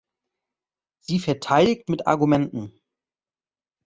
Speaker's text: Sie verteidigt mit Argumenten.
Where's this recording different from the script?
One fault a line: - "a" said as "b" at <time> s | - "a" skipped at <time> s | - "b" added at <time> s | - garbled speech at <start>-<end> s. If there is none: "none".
none